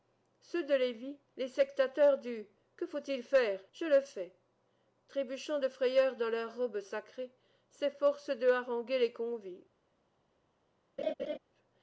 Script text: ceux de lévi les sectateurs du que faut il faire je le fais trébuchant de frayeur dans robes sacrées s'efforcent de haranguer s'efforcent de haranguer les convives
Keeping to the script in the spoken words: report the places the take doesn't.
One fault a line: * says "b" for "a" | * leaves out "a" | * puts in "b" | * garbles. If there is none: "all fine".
* puts in "leurs"
* leaves out "s'efforcent de haranguer"